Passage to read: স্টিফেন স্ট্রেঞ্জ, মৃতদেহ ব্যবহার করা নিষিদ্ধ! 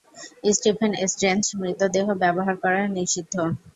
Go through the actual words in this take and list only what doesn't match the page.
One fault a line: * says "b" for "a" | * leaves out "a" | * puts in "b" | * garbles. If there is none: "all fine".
all fine